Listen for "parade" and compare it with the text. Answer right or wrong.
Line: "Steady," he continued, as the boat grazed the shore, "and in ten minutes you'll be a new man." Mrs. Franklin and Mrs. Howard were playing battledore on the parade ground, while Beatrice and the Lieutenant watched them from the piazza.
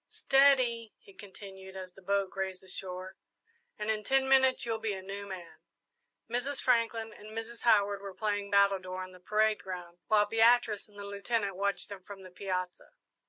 right